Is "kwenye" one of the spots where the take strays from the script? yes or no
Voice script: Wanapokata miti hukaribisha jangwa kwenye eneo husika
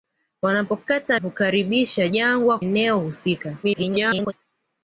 yes